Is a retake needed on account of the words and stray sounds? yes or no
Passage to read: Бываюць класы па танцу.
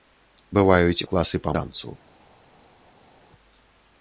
no